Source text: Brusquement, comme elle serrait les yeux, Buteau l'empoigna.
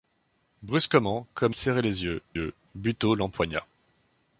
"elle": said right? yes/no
no